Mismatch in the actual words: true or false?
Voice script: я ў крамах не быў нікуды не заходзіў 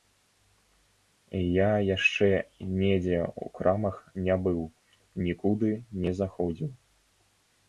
true